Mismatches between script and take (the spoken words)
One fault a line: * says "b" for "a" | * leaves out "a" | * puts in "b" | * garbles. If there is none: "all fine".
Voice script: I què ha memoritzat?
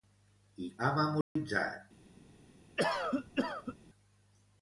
* leaves out "què"